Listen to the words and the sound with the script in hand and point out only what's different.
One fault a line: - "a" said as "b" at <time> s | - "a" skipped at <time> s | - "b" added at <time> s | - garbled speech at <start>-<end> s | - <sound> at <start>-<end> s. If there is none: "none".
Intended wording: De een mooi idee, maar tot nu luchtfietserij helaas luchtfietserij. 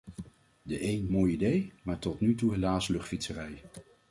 - "luchtfietserij" said as "toe" at 2.3 s